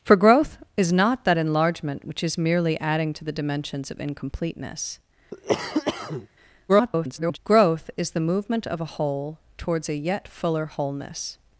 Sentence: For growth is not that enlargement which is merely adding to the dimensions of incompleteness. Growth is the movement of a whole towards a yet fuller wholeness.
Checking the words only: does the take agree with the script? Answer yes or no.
no